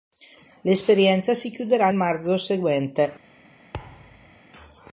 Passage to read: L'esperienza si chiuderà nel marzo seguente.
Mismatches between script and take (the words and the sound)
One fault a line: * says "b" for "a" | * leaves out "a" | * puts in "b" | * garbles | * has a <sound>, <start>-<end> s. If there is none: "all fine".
* leaves out "nel"
* has a thud, 3.7-4.4 s